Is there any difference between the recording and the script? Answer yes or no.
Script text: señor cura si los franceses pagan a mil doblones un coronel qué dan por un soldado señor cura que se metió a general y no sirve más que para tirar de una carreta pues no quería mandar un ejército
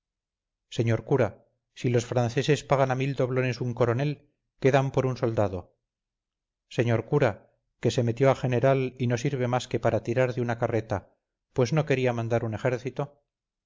no